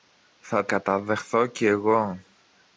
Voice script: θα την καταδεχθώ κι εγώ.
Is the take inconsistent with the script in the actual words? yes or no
yes